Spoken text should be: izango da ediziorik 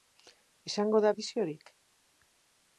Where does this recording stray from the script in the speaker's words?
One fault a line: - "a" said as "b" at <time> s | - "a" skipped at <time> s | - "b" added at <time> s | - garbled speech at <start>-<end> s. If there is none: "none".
none